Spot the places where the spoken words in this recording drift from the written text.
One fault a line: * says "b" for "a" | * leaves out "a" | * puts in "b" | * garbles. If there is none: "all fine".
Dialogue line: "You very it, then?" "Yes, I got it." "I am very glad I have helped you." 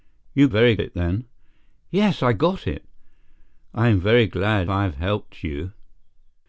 all fine